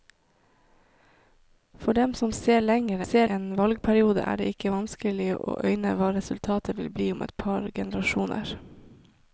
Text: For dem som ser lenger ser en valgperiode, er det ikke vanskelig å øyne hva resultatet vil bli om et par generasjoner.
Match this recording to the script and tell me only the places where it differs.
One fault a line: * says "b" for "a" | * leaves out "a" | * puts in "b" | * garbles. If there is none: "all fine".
all fine